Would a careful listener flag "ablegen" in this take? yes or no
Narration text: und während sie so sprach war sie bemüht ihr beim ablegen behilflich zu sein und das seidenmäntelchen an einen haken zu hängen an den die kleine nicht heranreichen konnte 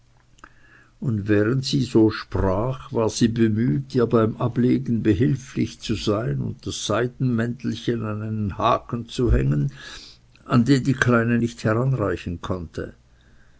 no